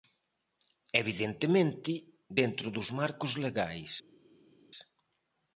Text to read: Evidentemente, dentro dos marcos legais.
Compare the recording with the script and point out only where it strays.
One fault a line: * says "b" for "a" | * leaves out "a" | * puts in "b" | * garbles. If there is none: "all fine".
all fine